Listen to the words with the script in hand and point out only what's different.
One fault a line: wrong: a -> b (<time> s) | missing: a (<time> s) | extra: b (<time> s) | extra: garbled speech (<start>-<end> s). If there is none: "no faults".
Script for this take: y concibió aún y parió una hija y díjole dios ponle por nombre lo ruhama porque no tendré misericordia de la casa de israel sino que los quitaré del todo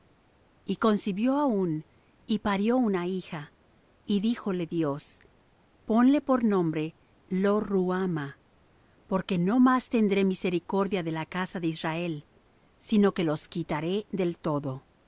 extra: más (9.6 s)